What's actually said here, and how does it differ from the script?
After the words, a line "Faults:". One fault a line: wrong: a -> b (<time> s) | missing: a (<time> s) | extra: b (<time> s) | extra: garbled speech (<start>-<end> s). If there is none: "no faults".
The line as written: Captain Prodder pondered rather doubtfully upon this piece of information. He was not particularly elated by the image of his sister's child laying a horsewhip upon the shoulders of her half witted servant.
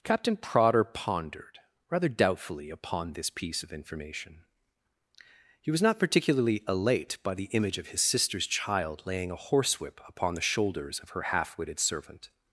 Captain Prodder pondered rather doubtfully upon this piece of information. He was not particularly elate by the image of his sister's child laying a horsewhip upon the shoulders of her half witted servant.
Faults:
wrong: elated -> elate (6.7 s)